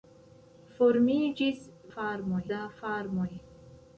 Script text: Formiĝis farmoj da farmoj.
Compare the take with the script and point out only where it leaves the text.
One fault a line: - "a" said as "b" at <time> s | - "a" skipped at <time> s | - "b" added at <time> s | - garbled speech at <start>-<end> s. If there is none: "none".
none